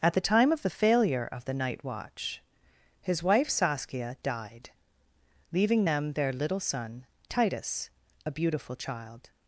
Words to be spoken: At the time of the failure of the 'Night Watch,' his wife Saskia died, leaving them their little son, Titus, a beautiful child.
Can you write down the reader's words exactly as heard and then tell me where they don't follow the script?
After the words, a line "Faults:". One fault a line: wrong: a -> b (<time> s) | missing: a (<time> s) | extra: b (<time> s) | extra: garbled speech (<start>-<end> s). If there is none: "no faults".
At the time of the failure of the 'Night Watch,' his wife Saskia died, leaving them their little son, Titus, a beautiful child.
Faults:
no faults